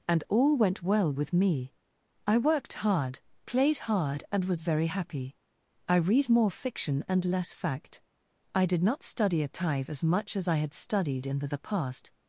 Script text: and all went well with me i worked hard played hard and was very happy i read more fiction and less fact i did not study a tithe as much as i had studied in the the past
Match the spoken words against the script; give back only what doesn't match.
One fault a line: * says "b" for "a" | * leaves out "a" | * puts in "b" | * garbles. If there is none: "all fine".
all fine